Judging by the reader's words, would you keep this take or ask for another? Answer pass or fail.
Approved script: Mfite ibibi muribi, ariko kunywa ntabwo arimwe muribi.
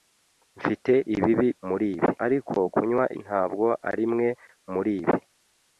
pass